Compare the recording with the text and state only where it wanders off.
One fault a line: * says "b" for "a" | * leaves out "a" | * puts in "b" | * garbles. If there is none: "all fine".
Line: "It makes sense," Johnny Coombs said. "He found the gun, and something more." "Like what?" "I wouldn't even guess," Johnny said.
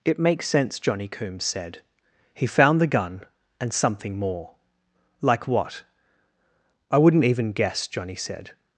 all fine